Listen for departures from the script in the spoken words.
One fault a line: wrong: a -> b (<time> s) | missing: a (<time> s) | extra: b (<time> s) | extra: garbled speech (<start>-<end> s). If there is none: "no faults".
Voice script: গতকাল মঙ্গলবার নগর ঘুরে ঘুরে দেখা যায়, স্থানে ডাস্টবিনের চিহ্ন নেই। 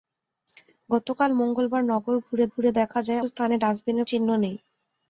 no faults